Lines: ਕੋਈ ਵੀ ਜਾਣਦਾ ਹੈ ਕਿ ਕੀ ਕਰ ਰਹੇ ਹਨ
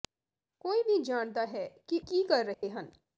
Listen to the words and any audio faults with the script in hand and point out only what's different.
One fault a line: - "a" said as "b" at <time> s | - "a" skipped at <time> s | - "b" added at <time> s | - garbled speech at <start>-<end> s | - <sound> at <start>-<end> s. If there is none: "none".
- dropout at 2.5-2.6 s